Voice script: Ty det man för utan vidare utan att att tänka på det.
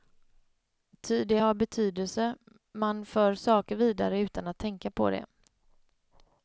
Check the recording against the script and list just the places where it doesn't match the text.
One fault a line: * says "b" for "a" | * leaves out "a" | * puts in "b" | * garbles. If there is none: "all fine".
* puts in "har betydelse"
* says "saker" for "utan"
* leaves out "att"